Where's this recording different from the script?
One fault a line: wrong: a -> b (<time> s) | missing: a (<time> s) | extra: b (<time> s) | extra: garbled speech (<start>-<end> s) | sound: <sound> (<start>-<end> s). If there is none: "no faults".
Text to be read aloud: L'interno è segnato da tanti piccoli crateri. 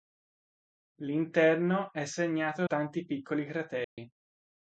missing: da (2.6 s)
sound: dropout (3.8-4.0 s)